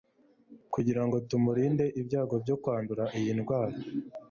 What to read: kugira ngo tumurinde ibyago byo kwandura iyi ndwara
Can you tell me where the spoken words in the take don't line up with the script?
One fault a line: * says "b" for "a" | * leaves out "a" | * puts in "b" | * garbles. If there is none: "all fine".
all fine